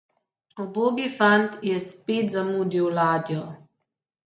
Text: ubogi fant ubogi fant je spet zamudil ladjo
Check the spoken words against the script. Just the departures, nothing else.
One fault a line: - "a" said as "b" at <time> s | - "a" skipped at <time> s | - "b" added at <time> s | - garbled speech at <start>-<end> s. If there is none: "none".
- "ubogi fant" skipped at 1.6 s